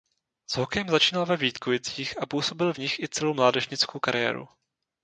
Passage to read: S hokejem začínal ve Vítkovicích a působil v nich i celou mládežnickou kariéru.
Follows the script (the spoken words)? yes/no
yes